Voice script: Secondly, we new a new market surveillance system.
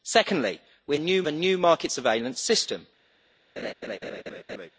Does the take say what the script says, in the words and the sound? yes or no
no